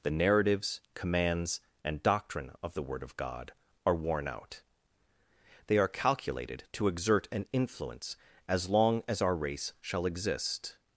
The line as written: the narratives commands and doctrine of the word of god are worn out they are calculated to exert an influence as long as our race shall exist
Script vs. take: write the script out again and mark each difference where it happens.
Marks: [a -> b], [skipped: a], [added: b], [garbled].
the narratives commands and doctrine of the word of god are worn out they are calculated to exert an influence as long as our race shall exist